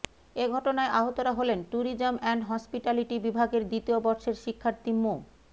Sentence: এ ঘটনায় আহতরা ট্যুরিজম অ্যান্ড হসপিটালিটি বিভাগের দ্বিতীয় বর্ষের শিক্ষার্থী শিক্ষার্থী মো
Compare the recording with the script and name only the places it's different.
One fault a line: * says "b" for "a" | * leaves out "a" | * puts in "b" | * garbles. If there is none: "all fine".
* puts in "হলেন"
* leaves out "শিক্ষার্থী"